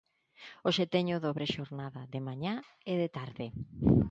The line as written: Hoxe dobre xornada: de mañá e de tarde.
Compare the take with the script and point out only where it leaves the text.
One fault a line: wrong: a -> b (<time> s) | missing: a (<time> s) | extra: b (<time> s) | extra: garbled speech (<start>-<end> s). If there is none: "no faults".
extra: teño (0.9 s)